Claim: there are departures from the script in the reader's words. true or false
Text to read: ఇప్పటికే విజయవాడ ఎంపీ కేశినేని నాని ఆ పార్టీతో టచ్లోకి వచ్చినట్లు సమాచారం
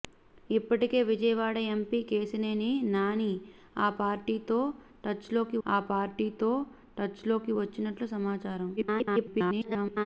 true